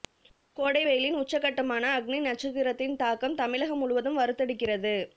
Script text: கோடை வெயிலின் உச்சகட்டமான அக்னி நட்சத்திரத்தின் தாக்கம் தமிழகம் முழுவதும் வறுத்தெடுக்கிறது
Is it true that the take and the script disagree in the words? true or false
false